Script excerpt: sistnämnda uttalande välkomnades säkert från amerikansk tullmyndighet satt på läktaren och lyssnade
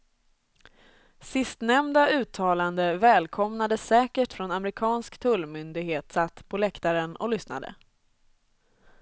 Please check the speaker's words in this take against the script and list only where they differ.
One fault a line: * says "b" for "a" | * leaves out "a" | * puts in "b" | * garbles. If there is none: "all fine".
all fine